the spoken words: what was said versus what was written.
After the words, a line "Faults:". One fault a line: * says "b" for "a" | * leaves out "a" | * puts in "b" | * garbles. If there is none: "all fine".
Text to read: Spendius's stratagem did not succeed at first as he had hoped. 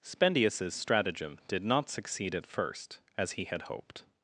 Spendius's stratagem did not succeed at first as he had hoped.
Faults:
all fine